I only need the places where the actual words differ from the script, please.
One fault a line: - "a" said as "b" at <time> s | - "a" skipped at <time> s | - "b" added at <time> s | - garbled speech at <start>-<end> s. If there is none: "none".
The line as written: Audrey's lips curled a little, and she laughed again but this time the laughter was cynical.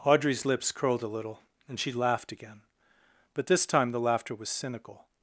none